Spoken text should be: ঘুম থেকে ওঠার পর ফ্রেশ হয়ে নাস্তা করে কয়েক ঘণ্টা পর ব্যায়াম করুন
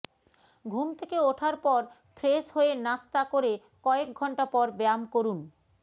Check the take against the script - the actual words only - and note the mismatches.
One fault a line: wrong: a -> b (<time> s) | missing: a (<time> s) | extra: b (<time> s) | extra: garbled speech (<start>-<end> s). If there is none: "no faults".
no faults